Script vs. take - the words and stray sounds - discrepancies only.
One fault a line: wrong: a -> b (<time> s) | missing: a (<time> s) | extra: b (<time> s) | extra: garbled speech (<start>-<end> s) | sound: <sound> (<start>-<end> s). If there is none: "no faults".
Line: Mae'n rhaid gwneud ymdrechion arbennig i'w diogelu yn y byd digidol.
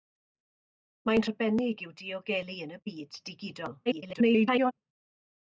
missing: rhaid gwneud ymdrechion (1.2 s)
extra: garbled speech (3.9-4.7 s)